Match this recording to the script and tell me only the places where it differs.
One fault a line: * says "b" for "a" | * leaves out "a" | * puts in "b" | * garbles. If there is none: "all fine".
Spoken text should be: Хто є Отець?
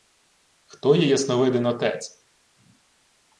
* puts in "Ясновидин"